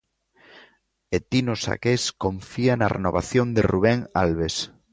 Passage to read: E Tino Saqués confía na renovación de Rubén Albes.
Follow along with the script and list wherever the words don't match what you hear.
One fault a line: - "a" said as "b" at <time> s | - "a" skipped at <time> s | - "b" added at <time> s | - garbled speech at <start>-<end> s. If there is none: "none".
none